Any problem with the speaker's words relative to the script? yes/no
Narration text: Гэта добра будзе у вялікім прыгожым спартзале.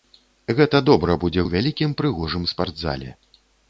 no